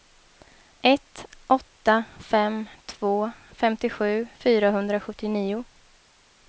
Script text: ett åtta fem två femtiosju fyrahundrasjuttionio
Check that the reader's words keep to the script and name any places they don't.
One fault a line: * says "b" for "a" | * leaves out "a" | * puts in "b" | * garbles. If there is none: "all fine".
all fine